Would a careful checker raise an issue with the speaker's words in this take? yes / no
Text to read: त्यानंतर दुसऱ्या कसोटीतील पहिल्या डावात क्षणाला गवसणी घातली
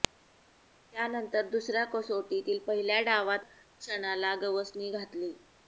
no